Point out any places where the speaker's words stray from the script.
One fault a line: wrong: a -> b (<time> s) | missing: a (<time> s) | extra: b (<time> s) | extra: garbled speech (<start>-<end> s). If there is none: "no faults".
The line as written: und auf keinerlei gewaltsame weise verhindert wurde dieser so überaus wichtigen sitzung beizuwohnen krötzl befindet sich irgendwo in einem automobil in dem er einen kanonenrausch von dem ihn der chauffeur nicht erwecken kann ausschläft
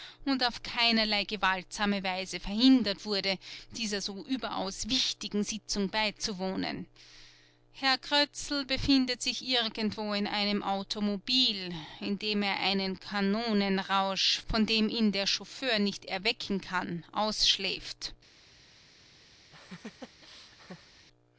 extra: herr (7.7 s)